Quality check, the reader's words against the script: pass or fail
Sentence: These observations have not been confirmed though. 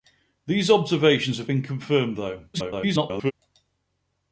fail